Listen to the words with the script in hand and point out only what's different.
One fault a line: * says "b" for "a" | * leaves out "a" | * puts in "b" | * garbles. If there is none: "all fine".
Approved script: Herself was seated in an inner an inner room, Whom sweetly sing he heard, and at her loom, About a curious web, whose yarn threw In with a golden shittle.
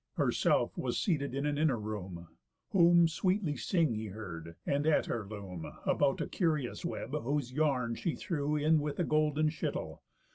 * leaves out "an inner"
* puts in "she"